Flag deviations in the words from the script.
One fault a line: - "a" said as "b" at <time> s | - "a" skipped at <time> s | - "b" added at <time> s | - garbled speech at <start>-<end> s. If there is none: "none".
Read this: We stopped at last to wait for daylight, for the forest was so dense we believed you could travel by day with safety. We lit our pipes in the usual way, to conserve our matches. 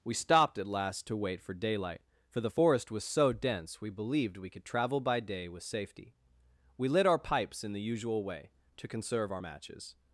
- "you" said as "we" at 4.4 s